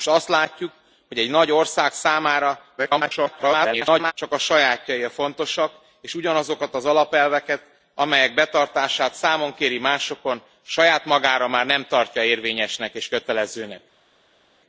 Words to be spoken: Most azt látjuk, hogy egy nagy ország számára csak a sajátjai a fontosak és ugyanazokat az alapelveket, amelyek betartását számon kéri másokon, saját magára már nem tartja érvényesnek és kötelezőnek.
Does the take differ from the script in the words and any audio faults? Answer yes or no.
yes